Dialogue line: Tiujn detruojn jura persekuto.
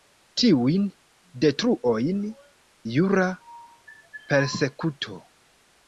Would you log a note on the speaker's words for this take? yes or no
no